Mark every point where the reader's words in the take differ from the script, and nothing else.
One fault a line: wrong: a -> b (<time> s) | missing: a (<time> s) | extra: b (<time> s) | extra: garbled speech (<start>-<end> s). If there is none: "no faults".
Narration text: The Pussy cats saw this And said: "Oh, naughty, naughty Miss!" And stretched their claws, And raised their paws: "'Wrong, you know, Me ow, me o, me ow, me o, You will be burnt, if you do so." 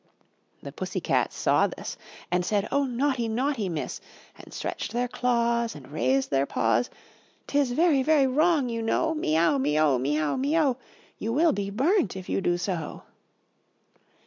extra: Tis very very (7.5 s)